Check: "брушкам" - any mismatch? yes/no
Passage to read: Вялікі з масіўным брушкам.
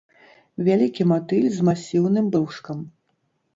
no